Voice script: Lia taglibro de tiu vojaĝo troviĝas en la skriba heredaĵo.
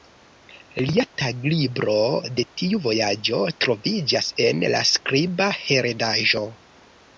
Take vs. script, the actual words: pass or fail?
pass